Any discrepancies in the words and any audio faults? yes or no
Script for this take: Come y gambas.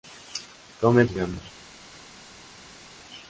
no